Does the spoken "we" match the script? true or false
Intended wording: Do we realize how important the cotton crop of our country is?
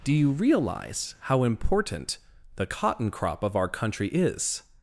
false